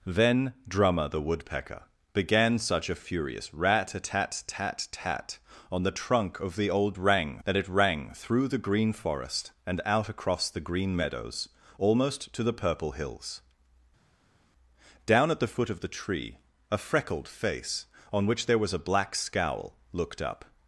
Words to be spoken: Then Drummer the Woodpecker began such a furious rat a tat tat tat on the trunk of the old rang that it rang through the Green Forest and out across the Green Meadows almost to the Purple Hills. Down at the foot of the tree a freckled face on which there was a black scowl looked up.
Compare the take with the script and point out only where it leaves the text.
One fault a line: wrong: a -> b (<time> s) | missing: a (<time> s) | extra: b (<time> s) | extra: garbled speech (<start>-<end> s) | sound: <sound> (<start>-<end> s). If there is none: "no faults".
no faults